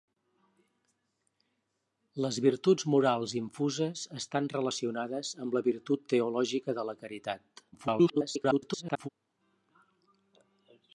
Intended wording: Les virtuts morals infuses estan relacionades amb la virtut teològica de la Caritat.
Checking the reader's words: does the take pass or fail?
fail